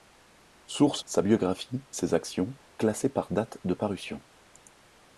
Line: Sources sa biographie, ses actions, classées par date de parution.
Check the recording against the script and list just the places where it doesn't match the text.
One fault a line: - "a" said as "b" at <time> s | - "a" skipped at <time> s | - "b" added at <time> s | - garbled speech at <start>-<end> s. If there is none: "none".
none